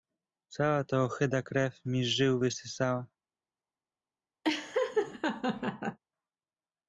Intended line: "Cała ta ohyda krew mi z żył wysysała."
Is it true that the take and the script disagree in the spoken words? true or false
false